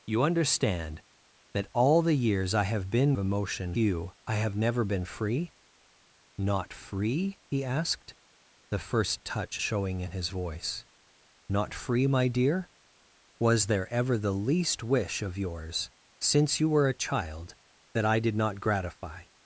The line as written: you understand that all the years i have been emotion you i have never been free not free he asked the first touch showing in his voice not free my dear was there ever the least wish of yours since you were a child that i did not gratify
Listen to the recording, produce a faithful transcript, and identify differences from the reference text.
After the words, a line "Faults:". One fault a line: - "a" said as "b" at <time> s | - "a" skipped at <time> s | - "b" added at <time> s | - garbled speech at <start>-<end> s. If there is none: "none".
you understand that all the years i have been emotion you i have never been free not free he asked the first touch showing in his voice not free my dear was there ever the least wish of yours since you were a child that i did not gratify
Faults:
none